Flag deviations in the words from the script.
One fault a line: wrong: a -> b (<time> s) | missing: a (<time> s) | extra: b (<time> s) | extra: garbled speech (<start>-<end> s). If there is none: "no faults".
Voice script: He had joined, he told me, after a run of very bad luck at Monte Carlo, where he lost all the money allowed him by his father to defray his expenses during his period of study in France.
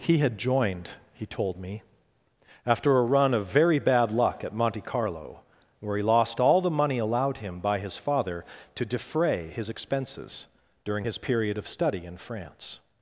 no faults